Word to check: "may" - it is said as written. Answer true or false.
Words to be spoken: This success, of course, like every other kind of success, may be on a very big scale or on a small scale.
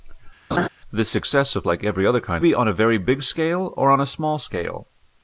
false